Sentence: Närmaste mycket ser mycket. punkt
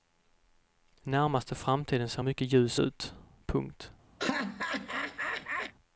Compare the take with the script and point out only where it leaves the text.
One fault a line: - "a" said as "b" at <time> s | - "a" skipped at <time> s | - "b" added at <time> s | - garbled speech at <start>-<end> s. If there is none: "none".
- "mycket" said as "framtiden" at 1.6 s
- "ljus ut" added at 2.5 s